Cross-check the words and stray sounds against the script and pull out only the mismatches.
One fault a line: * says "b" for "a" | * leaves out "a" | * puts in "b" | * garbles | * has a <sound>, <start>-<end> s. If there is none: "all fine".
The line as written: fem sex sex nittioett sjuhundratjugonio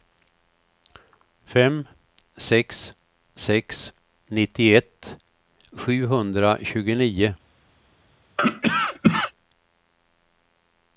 * has a cough, 8.4-9.3 s